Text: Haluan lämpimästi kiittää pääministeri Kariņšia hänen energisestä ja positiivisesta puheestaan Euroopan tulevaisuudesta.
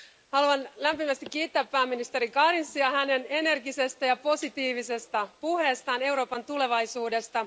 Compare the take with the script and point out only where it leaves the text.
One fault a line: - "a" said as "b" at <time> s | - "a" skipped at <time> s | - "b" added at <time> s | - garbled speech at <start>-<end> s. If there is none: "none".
none